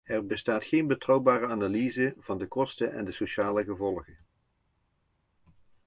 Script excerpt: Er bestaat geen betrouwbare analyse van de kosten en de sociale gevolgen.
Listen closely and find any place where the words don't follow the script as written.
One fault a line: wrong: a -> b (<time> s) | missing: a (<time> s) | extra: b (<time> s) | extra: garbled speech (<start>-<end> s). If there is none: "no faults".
no faults